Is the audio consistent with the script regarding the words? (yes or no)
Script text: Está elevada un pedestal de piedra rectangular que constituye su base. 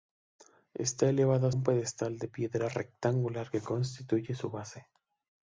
yes